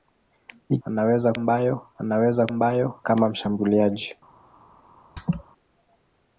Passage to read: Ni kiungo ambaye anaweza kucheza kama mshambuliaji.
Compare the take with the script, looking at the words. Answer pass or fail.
fail